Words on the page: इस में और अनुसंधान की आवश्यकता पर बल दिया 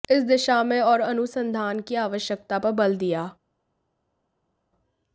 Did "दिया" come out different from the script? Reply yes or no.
no